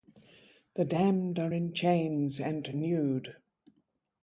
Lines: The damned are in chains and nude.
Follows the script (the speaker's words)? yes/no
yes